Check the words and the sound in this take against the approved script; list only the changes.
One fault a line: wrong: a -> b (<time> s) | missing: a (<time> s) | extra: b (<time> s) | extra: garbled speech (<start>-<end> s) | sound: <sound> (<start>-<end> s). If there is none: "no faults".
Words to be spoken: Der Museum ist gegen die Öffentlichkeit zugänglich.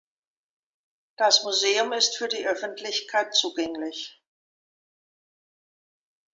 wrong: Der -> Das (1.2 s)
wrong: gegen -> für (2.2 s)